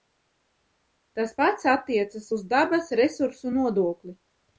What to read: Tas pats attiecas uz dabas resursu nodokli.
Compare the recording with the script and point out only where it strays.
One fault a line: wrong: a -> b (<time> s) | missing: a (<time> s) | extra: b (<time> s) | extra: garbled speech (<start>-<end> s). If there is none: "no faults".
no faults